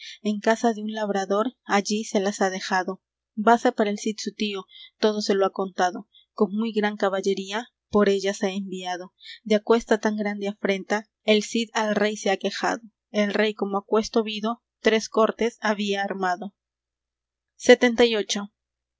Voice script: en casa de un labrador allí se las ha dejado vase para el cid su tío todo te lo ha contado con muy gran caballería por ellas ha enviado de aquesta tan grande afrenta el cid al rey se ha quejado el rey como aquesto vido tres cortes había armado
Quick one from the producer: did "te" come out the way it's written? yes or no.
no